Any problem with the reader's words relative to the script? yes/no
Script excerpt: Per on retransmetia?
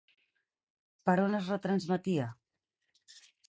yes